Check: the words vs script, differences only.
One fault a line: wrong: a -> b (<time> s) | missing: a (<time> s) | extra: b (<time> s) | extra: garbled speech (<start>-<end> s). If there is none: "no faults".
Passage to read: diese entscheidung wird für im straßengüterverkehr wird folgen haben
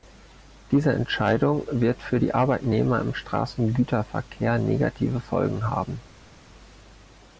extra: die arbeitnehmer (2.2 s)
wrong: wird -> negative (4.6 s)